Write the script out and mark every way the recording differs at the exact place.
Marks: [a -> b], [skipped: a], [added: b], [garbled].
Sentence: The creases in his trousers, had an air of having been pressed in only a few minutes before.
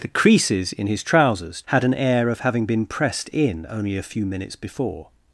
The creases in his trousers, had an air of having been pressed in only a few minutes before.